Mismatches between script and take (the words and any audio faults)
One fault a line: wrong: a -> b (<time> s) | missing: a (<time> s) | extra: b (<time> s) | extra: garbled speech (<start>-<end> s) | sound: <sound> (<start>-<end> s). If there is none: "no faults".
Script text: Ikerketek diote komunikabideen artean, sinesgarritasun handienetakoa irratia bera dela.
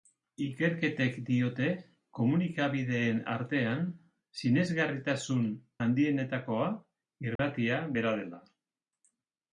sound: dropout (7.4-7.4 s)